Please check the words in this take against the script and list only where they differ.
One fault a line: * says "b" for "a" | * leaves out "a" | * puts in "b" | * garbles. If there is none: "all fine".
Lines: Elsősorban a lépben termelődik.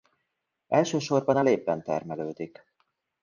all fine